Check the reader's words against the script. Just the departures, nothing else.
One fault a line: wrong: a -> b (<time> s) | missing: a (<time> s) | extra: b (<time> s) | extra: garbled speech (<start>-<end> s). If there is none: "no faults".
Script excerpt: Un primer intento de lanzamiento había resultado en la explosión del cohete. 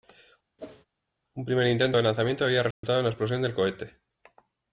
no faults